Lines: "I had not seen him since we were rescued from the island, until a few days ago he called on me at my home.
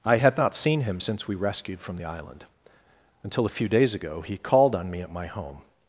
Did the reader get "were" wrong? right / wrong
wrong